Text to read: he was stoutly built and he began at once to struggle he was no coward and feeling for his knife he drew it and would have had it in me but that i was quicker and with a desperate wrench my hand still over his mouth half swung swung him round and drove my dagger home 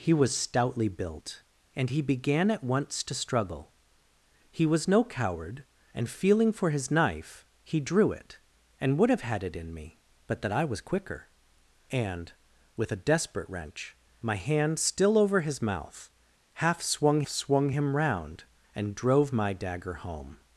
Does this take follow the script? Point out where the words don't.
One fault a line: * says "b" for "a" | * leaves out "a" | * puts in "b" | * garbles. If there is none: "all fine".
all fine